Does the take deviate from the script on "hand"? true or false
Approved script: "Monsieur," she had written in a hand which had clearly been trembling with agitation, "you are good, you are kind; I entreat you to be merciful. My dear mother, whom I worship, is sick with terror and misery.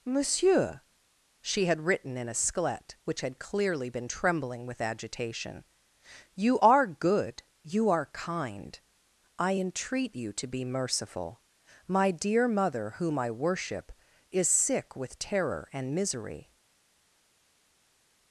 true